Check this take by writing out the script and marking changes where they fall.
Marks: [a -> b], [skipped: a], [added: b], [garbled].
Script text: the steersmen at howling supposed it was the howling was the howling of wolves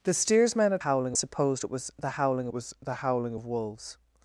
the steersmen at howling supposed it was the howling was the howling of wolves